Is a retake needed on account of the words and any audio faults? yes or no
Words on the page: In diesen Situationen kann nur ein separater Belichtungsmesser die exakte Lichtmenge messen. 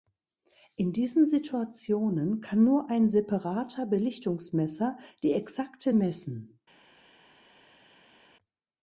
yes